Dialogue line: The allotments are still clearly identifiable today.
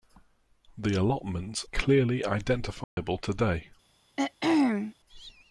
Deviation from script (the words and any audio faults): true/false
true